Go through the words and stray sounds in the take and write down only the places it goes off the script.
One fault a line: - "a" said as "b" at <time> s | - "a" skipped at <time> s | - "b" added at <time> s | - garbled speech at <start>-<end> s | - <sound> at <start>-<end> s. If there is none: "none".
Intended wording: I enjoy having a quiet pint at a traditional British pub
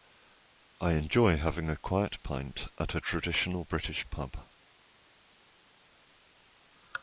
none